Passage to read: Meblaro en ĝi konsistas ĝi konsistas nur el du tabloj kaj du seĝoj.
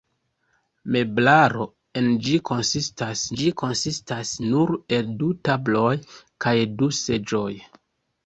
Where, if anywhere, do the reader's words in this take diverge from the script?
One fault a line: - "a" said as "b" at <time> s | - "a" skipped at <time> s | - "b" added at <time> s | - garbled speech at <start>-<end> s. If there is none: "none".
none